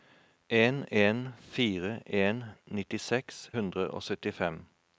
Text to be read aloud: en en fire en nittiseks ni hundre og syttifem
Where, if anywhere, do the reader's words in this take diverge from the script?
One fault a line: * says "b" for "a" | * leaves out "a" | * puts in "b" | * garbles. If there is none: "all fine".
* leaves out "ni"